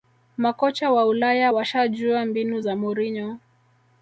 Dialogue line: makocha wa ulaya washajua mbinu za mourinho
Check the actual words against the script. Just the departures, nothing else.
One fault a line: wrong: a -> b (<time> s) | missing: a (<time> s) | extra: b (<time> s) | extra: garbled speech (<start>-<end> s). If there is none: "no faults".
no faults